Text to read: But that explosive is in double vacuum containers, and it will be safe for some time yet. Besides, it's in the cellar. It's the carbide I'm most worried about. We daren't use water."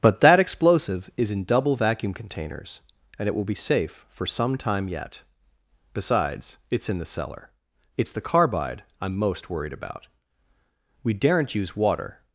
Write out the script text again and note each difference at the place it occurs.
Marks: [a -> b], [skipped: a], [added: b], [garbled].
But that explosive is in double vacuum containers, and it will be safe for some time yet. Besides, it's in the cellar. It's the carbide I'm most worried about. We daren't use water."